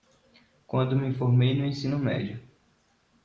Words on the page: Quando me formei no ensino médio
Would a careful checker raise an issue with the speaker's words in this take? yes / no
no